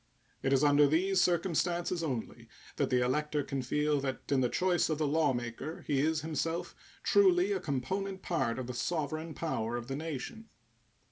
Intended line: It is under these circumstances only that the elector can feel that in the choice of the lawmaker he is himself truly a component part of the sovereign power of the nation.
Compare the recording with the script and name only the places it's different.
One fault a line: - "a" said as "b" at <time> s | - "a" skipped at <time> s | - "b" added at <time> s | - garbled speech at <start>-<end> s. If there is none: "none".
none